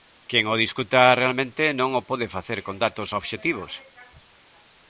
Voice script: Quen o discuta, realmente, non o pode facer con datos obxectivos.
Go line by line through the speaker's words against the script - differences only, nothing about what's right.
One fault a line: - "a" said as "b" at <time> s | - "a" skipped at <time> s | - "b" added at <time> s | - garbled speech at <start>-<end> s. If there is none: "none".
none